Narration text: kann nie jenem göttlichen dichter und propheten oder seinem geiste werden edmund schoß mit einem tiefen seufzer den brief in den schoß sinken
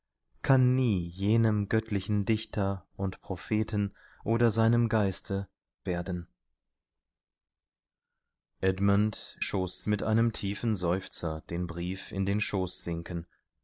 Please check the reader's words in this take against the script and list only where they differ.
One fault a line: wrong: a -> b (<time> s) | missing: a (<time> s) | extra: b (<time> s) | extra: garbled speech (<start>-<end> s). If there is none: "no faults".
no faults